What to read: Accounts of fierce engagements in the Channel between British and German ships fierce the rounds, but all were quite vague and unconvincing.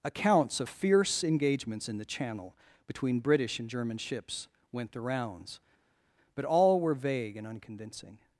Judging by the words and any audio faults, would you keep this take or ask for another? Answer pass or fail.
fail